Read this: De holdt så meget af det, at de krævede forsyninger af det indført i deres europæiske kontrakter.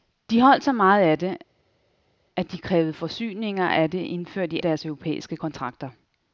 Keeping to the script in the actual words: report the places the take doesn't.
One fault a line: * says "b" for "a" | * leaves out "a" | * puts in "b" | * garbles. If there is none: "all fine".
all fine